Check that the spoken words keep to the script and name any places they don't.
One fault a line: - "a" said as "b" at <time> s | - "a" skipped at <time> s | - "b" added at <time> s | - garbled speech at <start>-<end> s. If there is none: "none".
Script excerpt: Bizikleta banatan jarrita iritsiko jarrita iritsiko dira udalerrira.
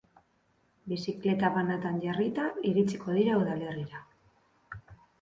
- "jarrita iritsiko" skipped at 3.2 s